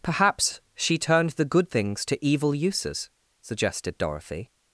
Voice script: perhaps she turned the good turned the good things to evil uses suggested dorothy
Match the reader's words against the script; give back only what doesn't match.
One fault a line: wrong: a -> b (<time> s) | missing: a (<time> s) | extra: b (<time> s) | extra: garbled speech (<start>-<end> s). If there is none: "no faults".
missing: turned the good (1.7 s)